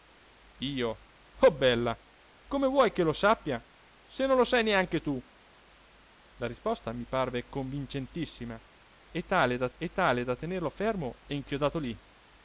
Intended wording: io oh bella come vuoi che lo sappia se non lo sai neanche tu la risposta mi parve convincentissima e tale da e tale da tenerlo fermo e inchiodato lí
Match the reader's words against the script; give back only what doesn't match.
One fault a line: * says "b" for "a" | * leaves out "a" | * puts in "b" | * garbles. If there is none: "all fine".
all fine